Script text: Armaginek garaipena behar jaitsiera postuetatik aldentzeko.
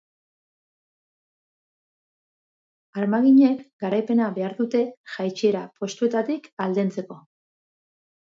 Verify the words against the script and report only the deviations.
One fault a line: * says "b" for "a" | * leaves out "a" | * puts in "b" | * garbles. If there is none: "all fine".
* puts in "dute"